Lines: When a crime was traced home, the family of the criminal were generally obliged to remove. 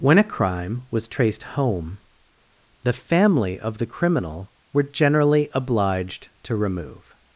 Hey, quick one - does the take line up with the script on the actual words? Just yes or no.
yes